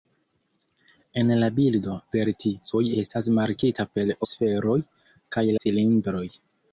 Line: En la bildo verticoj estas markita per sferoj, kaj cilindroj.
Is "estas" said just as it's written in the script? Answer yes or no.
yes